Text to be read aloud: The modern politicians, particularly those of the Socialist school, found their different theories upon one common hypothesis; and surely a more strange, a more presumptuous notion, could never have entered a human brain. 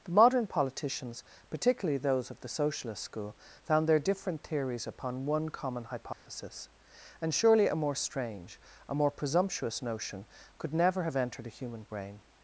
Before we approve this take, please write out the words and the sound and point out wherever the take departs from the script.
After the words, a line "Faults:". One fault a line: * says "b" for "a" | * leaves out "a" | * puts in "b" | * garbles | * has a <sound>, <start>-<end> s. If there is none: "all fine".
The modern politicians, particularly those of the Socialist school, found their different theories upon one common hypothesis; and surely a more strange, a more presumptuous notion, could never have entered a human brain.
Faults:
* has a dropout, 6.1-6.3 s